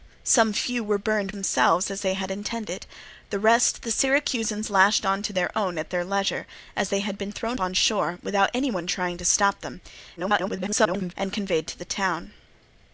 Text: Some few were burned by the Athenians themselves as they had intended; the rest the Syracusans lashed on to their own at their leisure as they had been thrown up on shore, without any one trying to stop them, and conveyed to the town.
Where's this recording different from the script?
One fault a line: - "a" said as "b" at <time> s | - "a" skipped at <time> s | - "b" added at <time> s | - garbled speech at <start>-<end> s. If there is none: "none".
- "by the Athenians" skipped at 1.4 s
- "up" skipped at 7.6 s
- garbled speech at 10.2-11.1 s